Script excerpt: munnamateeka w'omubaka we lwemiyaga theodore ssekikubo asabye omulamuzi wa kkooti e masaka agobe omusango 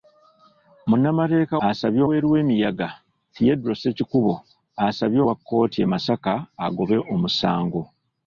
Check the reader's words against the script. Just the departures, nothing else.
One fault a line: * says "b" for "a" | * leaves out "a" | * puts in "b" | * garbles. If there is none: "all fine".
* says "asabye" for "w'omubaka"
* leaves out "omulamuzi"